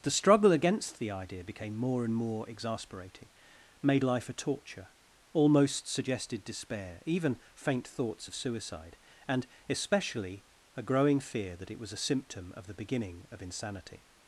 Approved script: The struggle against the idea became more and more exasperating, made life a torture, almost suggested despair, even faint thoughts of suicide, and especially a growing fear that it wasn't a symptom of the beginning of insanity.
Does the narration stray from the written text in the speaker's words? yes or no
yes